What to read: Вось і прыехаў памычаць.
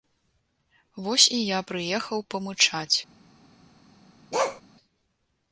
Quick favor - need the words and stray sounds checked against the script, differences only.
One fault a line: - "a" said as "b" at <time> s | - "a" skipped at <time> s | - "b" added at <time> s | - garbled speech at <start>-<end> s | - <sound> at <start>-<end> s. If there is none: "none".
- "я" added at 1.4 s
- bark at 4.3-4.6 s